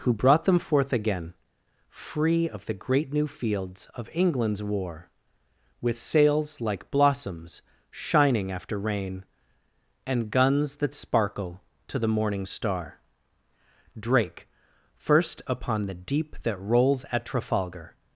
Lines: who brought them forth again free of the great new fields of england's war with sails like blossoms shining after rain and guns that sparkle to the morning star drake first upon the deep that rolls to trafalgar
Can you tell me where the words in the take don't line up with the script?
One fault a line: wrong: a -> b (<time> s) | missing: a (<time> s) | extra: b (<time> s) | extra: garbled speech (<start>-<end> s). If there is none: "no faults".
wrong: to -> at (17.1 s)